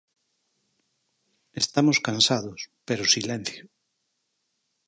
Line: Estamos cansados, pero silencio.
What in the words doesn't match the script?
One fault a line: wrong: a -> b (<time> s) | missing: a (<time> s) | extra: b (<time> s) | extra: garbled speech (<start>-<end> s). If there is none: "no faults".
no faults